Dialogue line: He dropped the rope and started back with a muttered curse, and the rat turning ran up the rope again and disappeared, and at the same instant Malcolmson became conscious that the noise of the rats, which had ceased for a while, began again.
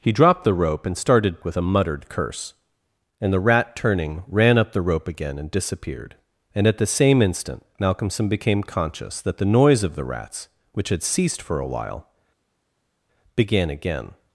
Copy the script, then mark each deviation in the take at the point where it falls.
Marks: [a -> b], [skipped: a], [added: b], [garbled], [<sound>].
He dropped the rope and started [skipped: back] with a muttered curse, and the rat turning ran up the rope again and disappeared, and at the same instant Malcolmson became conscious that the noise of the rats, which had ceased for a while, began again.